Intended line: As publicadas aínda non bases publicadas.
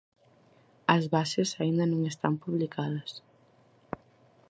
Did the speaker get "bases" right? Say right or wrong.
wrong